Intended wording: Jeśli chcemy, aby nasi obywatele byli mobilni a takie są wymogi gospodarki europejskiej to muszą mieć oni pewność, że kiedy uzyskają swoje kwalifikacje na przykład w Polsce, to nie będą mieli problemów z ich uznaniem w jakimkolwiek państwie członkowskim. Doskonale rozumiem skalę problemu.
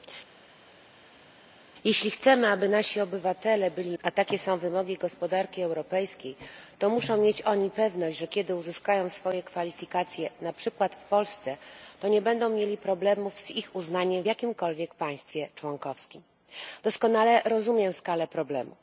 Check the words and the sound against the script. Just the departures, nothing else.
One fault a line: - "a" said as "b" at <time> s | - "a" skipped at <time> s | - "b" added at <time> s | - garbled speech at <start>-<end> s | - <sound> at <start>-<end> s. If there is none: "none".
- "mobilni" skipped at 4.0 s